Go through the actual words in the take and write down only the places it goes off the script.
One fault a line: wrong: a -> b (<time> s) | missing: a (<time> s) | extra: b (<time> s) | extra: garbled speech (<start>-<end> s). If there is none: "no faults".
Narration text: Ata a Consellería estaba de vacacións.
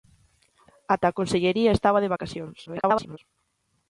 extra: garbled speech (2.7-3.2 s)